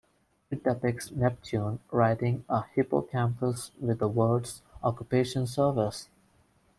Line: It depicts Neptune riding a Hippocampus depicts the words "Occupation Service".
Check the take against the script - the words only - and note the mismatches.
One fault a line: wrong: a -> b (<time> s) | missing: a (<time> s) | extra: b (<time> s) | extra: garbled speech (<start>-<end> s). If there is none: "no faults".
wrong: depicts -> with (3.8 s)